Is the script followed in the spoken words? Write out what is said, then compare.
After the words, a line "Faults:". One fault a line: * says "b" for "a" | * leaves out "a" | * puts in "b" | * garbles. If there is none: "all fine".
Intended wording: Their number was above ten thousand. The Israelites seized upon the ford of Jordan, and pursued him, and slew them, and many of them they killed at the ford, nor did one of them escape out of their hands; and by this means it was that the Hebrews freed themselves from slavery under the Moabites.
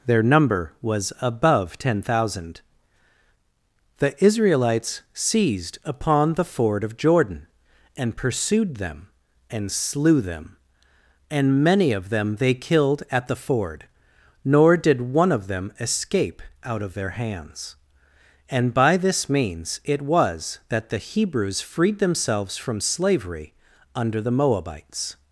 Their number was above ten thousand. The Israelites seized upon the ford of Jordan, and pursued them, and slew them, and many of them they killed at the ford, nor did one of them escape out of their hands; and by this means it was that the Hebrews freed themselves from slavery under the Moabites.
Faults:
* says "them" for "him"